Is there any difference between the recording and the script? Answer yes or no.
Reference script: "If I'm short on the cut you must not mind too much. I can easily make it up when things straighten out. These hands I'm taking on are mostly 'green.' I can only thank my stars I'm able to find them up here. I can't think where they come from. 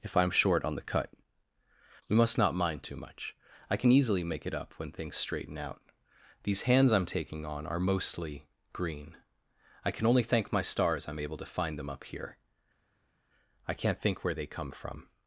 yes